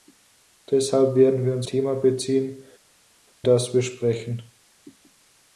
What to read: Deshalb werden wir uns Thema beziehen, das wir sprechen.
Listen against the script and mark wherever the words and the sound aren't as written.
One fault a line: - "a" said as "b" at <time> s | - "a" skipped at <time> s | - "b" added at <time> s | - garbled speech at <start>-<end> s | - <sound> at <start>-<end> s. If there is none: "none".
none